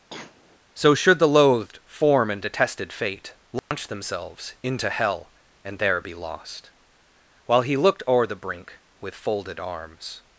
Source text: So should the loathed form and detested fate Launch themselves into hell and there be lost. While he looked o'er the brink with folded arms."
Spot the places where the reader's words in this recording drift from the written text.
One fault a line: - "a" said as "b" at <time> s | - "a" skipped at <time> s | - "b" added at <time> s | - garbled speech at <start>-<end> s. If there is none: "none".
none